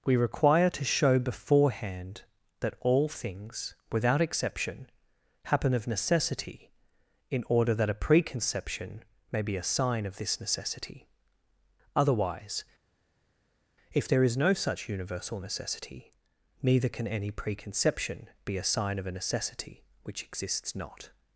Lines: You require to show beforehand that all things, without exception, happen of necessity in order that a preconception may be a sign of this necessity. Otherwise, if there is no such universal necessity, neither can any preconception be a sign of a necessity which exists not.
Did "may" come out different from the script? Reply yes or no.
no